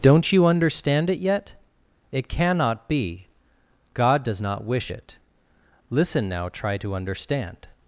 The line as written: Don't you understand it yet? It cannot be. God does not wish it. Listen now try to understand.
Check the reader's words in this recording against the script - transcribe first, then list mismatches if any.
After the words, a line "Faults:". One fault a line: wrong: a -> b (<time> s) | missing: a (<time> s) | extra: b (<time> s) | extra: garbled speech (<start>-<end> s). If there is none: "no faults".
Don't you understand it yet? It cannot be. God does not wish it. Listen now try to understand.
Faults:
no faults